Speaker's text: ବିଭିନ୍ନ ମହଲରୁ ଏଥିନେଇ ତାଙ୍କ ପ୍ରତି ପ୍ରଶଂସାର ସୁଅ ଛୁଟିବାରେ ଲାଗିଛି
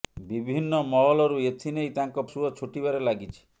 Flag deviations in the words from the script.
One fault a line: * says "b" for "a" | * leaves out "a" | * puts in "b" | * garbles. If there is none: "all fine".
* leaves out "ପ୍ରତି ପ୍ରଶଂସାର"